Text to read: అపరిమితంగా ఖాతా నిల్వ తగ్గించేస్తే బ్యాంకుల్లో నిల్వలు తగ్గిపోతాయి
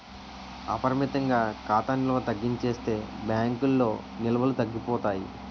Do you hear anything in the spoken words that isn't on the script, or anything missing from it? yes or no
no